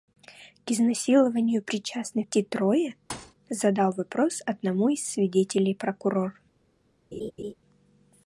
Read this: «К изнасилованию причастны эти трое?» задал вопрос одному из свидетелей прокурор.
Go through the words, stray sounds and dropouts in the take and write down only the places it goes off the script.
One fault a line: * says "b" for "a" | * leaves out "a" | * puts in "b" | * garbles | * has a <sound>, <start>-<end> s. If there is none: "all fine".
* has a thud, 3.1-3.3 s
* has a laugh, 7.1-7.5 s